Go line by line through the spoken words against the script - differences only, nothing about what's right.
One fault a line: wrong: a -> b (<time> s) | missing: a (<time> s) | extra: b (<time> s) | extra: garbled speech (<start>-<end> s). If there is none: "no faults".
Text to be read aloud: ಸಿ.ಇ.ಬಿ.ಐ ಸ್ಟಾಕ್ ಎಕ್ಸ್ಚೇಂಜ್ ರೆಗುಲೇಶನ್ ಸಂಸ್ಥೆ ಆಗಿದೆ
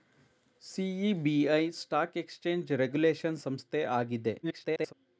extra: garbled speech (4.4-4.9 s)